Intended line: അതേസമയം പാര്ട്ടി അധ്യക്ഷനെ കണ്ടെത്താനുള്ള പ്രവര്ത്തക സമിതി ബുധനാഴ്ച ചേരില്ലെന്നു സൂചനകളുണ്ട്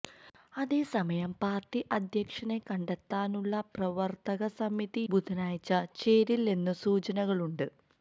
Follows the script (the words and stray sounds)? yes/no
yes